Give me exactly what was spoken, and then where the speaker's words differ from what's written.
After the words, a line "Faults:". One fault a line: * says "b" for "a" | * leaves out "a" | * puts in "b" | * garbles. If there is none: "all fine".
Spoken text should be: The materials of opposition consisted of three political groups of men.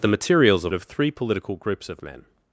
The materials of of three political groups of men.
Faults:
* leaves out "opposition consisted"